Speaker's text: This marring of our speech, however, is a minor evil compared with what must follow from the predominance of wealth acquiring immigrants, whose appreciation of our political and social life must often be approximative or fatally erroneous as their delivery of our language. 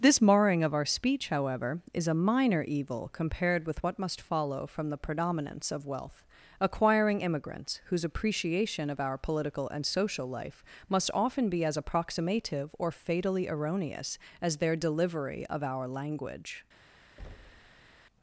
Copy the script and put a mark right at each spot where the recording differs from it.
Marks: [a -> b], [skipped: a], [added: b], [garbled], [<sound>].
This marring of our speech, however, is a minor evil compared with what must follow from the predominance of wealth acquiring immigrants, whose appreciation of our political and social life must often be [added: as] approximative or fatally erroneous as their delivery of our language. [thud]